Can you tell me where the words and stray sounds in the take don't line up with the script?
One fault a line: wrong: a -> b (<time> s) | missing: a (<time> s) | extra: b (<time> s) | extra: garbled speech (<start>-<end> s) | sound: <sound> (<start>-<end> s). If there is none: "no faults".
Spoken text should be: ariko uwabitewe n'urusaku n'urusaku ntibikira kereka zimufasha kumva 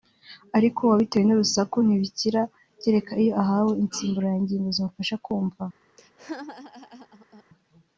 missing: n'urusaku (1.8 s)
extra: iyo ahawe insimburangingo (3.2 s)
sound: laugh (6.0-7.4 s)